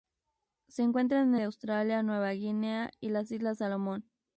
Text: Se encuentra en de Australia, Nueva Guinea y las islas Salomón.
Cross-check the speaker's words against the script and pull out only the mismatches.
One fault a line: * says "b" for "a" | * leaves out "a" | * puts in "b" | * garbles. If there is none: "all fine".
all fine